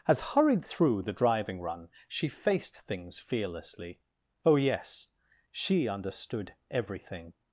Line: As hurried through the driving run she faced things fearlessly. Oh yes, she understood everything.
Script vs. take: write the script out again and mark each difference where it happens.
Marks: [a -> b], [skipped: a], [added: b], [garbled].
As hurried through the driving run she faced things fearlessly. Oh yes, she understood everything.